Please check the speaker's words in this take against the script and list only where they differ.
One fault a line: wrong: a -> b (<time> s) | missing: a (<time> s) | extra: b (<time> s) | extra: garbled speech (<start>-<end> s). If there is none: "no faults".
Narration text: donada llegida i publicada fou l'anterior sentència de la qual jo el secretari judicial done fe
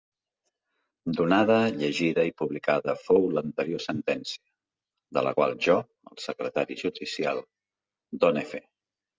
no faults